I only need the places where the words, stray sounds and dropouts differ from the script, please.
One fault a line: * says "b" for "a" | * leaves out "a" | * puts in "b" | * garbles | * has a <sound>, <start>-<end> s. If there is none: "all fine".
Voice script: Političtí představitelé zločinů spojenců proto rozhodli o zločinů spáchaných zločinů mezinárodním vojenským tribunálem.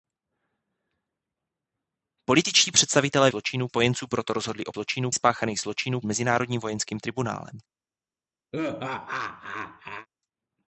* has a laugh, 8.5-10.1 s